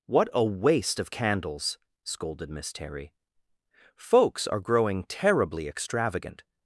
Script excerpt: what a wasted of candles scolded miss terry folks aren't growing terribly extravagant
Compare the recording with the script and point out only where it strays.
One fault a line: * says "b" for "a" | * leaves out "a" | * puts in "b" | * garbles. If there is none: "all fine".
* says "waste" for "wasted"
* says "are" for "aren't"